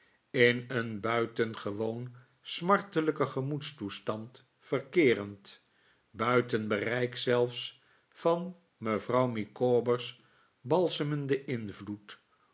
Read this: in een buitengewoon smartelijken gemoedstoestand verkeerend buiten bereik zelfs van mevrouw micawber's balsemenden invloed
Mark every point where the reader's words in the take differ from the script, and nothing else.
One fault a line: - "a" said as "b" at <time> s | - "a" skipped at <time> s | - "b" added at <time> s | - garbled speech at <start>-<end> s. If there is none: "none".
none